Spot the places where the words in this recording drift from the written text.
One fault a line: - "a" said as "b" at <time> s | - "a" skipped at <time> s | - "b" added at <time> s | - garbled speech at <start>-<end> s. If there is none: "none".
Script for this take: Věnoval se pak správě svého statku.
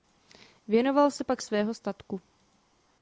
- "správě" skipped at 1.4 s